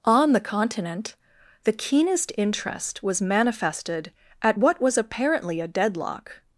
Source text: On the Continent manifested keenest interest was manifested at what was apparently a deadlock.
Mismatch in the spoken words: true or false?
true